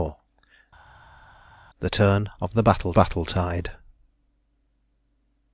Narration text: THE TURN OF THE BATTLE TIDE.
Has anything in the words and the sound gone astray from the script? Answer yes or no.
yes